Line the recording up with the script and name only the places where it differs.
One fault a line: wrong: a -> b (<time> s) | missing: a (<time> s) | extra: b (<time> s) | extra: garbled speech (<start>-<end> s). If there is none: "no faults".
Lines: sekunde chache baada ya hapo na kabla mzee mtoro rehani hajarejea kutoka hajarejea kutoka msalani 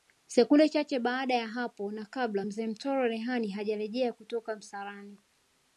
missing: hajarejea kutoka (4.6 s)